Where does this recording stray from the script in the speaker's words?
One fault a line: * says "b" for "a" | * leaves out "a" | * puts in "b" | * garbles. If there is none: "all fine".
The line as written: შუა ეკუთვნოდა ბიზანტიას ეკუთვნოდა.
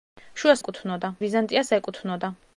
all fine